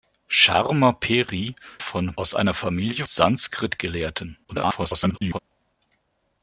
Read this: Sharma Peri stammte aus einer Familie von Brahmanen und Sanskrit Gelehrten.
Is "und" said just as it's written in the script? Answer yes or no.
no